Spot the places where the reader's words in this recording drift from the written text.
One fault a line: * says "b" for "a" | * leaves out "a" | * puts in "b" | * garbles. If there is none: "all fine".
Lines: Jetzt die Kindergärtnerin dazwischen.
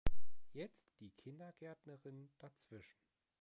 all fine